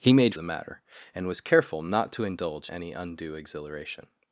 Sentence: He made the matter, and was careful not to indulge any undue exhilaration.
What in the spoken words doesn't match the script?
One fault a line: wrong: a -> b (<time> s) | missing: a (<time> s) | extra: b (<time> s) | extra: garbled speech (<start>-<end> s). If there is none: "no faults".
no faults